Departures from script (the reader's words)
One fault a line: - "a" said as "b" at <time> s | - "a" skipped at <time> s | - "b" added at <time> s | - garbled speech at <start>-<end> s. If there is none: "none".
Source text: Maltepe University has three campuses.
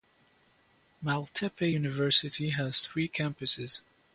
none